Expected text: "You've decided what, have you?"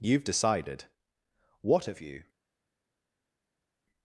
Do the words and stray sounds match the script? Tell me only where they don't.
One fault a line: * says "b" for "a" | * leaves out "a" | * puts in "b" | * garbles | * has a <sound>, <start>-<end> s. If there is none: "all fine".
all fine